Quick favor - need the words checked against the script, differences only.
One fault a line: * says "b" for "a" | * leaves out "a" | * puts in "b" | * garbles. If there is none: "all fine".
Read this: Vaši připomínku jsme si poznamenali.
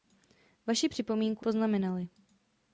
* leaves out "jsme si"